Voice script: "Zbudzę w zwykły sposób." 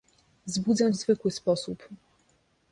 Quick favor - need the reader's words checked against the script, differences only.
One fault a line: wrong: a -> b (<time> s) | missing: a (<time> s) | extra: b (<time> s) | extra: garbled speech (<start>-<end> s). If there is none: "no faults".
no faults